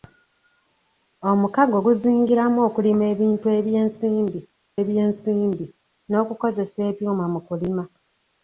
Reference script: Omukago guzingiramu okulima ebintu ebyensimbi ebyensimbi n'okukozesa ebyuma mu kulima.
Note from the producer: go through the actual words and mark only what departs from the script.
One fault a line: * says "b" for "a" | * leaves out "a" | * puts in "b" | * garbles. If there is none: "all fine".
all fine